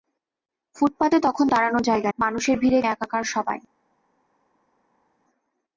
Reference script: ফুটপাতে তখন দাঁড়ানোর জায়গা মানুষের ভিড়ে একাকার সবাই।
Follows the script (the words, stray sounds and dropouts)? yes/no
yes